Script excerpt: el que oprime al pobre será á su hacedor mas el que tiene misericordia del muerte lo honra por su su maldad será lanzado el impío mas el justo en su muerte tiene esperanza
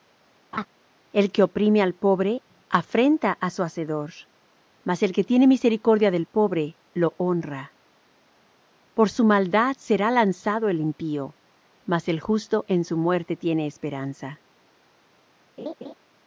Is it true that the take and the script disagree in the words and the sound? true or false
true